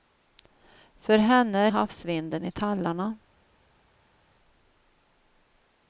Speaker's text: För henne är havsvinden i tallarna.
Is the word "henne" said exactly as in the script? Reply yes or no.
yes